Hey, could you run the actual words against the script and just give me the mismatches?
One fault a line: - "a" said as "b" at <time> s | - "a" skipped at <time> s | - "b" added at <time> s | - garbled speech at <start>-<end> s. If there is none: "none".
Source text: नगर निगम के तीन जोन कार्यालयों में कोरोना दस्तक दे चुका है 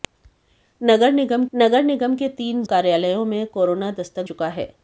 - "नगर निगम" added at 1.5 s
- "जोन" skipped at 2.6 s
- "दे" skipped at 4.2 s